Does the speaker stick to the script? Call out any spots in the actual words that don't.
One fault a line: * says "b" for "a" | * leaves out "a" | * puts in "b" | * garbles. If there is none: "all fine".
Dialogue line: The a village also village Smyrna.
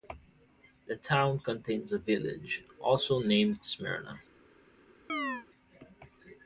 * puts in "town contains"
* says "named" for "village"